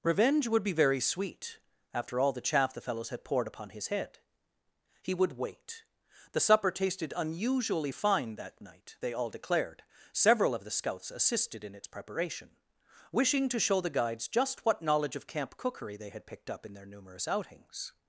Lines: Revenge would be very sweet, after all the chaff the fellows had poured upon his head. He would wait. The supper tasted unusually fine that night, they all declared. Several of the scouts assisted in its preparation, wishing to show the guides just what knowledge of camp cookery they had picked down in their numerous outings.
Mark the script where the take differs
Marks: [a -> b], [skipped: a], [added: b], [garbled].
Revenge would be very sweet, after all the chaff the fellows had poured upon his head. He would wait. The supper tasted unusually fine that night, they all declared. Several of the scouts assisted in its preparation, wishing to show the guides just what knowledge of camp cookery they had picked [down -> up] in their numerous outings.